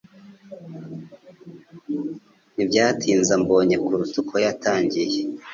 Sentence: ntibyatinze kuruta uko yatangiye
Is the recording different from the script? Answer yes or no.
yes